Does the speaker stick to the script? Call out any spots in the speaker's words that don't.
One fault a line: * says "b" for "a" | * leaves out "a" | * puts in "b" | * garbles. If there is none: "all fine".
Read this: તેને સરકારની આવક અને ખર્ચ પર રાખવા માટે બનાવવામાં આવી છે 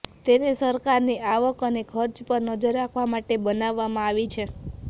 * puts in "નજર"